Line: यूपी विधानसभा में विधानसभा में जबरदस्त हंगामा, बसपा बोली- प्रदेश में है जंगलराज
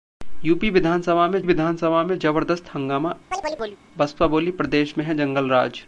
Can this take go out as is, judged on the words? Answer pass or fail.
pass